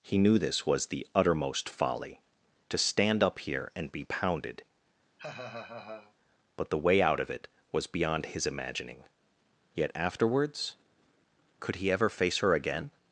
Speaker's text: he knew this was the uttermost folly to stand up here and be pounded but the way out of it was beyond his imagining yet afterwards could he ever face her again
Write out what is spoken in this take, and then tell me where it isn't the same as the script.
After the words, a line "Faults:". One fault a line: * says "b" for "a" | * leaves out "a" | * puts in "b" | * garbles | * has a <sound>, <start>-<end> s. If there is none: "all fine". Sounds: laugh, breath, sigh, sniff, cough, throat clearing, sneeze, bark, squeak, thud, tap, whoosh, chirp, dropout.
he knew this was the uttermost folly to stand up here and be pounded but the way out of it was beyond his imagining yet afterwards could he ever face her again
Faults:
* has a laugh, 5.2-6.1 s